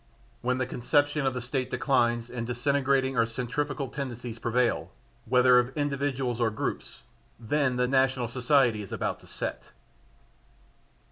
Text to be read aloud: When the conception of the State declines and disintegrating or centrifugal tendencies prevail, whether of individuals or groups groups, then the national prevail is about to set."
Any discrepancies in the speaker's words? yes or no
yes